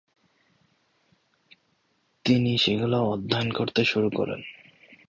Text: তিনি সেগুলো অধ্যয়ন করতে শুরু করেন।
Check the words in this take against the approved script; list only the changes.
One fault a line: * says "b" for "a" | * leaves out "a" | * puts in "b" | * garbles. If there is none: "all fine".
all fine